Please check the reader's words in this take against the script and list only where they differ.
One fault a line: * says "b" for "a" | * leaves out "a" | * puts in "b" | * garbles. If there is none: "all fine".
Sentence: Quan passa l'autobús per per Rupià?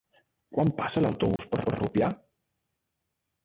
all fine